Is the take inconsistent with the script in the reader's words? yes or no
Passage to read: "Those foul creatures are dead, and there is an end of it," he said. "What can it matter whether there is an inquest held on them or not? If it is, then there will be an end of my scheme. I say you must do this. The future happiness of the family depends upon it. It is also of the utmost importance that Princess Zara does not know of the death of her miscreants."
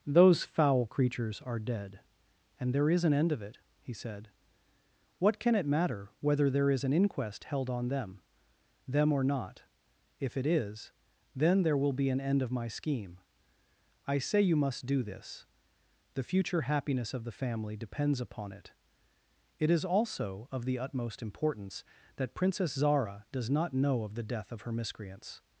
yes